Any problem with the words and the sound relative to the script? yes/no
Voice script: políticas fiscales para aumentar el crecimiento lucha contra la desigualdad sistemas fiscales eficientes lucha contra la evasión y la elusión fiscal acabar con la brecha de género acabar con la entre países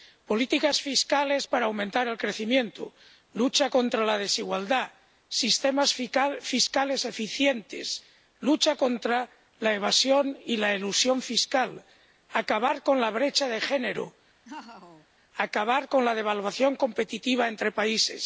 yes